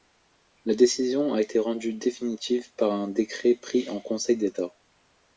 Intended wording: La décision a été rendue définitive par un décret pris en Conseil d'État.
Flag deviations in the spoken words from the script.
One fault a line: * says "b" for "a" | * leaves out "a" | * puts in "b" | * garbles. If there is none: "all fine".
all fine